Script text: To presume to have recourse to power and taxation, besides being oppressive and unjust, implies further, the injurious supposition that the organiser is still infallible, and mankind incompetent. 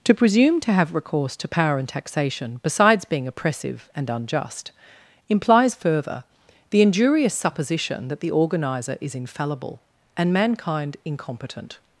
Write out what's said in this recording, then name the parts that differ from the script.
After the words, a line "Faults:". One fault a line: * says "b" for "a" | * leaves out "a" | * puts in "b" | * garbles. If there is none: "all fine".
To presume to have recourse to power and taxation, besides being oppressive and unjust, implies further, the injurious supposition that the organiser is infallible, and mankind incompetent.
Faults:
* leaves out "still"